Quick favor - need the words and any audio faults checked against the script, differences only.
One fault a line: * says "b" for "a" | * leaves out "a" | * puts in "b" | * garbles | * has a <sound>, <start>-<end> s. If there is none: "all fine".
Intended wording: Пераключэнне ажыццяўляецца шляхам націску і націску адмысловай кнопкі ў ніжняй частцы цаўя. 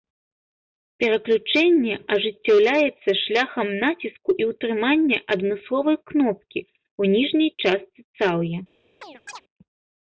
* says "ўтрымання" for "націску"
* has a chirp, 9.0-9.4 s